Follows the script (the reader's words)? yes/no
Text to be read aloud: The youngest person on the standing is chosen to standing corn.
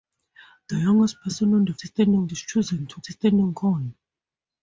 yes